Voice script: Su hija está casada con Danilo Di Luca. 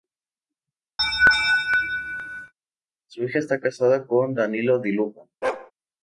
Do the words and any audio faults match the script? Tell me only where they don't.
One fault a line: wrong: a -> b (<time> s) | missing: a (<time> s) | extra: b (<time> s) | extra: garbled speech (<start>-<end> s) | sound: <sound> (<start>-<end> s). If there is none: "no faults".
sound: laugh (1.0-2.5 s)
sound: bark (5.4-5.7 s)